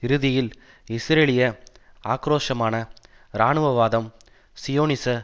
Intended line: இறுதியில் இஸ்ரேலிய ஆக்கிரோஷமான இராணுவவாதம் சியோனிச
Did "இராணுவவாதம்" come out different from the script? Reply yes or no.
no